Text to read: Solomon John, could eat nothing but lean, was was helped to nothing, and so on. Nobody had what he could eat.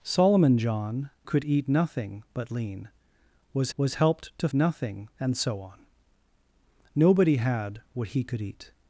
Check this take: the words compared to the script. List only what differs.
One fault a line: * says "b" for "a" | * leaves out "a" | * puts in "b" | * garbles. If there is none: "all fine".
all fine